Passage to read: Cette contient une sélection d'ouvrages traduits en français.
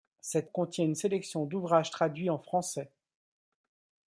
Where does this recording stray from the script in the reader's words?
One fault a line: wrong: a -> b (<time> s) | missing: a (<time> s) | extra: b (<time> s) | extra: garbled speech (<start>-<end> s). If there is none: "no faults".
no faults